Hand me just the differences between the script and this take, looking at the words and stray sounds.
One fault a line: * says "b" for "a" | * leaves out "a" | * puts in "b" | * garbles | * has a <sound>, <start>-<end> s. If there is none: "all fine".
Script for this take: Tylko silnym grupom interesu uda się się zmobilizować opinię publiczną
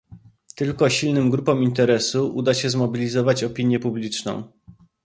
* leaves out "się"